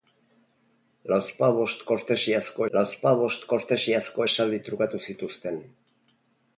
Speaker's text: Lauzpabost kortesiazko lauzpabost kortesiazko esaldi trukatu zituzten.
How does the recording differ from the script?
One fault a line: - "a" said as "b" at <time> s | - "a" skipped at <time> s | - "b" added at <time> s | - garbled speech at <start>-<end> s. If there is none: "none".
none